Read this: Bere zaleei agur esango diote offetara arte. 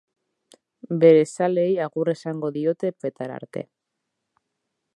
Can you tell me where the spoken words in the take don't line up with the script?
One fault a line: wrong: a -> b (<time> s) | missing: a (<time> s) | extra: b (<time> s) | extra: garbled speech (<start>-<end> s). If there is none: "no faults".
no faults